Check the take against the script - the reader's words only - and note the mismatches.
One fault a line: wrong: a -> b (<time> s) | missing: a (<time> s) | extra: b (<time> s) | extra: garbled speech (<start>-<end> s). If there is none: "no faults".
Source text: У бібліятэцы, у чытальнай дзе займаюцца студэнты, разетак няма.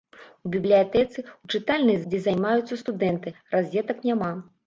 no faults